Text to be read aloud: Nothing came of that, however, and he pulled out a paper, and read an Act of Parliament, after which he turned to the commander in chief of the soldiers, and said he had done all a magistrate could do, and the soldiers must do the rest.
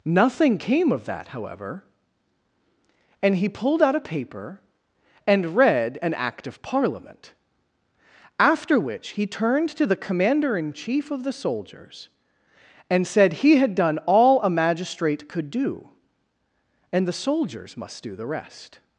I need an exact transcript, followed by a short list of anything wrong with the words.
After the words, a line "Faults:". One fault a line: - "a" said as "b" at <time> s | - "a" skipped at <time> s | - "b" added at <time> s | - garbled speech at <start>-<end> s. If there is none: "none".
Nothing came of that, however, and he pulled out a paper, and read an Act of Parliament, after which he turned to the commander in chief of the soldiers, and said he had done all a magistrate could do, and the soldiers must do the rest.
Faults:
none